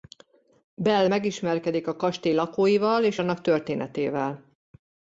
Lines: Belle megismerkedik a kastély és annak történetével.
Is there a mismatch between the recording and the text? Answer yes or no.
yes